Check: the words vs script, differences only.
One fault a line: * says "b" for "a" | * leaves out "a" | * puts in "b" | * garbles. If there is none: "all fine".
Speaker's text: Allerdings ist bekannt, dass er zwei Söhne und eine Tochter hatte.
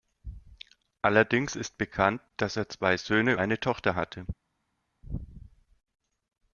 * leaves out "und"